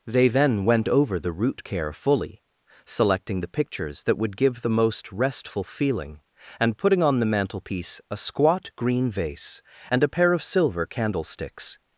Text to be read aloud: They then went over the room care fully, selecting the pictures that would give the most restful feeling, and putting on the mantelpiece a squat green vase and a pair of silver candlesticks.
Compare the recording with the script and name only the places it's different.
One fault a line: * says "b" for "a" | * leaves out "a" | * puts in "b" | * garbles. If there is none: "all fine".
* says "root" for "room"